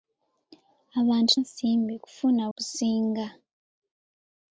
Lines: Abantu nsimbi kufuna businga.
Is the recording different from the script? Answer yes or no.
no